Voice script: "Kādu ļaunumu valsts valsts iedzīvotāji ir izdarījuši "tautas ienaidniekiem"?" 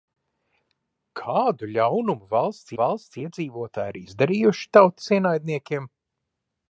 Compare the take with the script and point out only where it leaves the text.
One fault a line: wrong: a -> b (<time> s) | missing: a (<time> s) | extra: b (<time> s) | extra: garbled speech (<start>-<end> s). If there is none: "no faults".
no faults